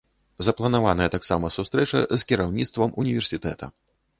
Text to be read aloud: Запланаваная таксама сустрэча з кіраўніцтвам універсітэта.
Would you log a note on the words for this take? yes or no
no